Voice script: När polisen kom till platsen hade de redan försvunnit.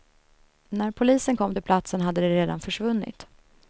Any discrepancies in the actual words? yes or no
no